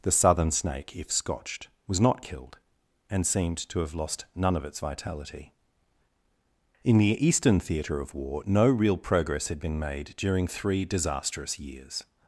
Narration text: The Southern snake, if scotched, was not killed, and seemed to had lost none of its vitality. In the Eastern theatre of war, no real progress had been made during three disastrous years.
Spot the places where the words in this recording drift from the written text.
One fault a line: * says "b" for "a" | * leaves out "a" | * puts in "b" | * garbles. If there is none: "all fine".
* says "have" for "had"